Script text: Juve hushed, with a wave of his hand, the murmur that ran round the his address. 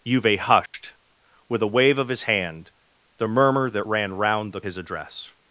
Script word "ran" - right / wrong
right